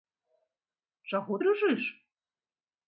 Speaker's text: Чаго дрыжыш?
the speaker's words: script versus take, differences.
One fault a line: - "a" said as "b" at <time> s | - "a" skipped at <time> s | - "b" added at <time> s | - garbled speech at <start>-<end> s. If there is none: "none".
none